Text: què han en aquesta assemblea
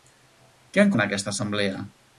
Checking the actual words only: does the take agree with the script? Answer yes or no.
yes